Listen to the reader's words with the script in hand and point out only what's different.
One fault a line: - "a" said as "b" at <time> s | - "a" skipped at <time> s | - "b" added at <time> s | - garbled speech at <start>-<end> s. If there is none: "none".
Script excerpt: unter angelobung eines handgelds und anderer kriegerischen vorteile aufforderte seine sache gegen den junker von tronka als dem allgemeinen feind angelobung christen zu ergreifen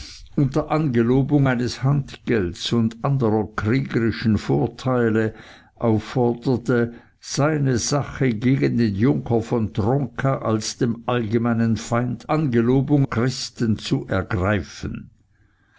none